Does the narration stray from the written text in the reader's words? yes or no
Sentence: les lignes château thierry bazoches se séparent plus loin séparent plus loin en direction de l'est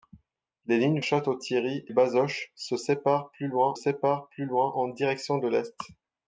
no